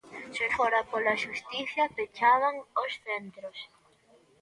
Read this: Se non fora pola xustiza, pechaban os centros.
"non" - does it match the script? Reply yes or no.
no